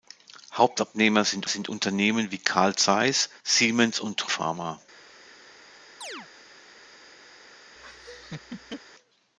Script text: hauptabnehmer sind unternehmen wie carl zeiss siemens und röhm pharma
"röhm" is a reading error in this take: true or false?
true